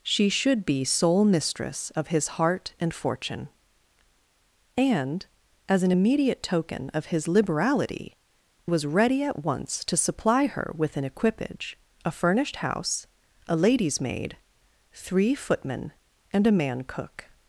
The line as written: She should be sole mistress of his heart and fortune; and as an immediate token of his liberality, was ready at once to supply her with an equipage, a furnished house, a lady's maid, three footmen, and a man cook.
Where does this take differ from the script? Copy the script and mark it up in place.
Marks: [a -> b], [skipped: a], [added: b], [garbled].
She should be sole mistress of his heart and fortune; and as an immediate token of his liberality, was ready at once to supply her with an equipage, a furnished house, a lady's maid, three footmen, and a man cook.